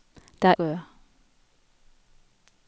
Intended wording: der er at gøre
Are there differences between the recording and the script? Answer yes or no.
no